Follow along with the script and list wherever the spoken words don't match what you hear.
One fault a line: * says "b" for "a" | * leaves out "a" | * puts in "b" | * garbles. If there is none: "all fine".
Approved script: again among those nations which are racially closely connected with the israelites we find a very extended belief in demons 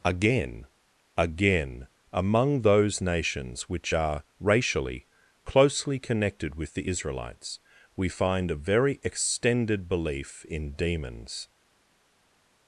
* puts in "again"